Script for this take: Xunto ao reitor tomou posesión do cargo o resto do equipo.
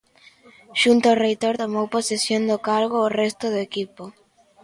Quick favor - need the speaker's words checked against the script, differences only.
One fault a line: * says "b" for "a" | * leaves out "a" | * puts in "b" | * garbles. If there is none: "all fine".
all fine